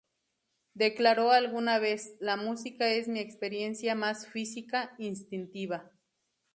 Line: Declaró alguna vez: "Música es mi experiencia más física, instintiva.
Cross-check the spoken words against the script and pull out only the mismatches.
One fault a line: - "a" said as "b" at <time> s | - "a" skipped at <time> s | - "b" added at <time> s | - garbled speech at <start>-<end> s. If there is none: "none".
- "La" added at 2.2 s